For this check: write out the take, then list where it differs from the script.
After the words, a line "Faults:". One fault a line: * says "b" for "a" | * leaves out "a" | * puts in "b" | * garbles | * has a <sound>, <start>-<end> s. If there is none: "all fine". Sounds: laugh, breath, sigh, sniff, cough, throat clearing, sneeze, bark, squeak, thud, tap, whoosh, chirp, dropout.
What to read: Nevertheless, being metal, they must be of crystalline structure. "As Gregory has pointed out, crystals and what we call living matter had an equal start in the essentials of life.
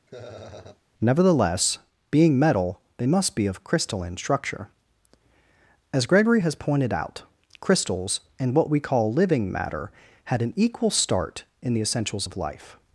Nevertheless, being metal, they must be of crystalline structure. "As Gregory has pointed out, crystals and what we call living matter had an equal start in the essentials of life.
Faults:
* has a laugh, 0.1-0.8 s